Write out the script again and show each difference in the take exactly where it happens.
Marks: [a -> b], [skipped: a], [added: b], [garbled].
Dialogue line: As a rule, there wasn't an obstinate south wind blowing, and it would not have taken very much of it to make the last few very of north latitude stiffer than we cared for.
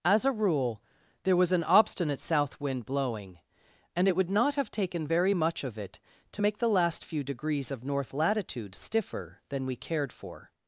As a rule, there [wasn't -> was] an obstinate south wind blowing, and it would not have taken very much of it to make the last few [very -> degrees] of north latitude stiffer than we cared for.